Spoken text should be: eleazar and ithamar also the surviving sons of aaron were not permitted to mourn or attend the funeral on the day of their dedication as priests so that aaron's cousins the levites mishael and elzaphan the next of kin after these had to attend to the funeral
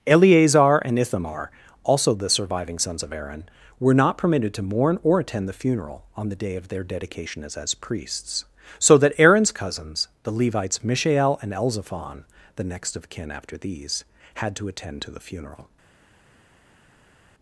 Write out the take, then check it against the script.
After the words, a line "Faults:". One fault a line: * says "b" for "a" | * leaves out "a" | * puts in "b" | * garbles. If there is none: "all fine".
eleazar and ithamar also the surviving sons of aaron were not permitted to mourn or attend the funeral on the day of their dedication as as priests so that aaron's cousins the levites mishael and elzaphan the next of kin after these had to attend to the funeral
Faults:
* puts in "as"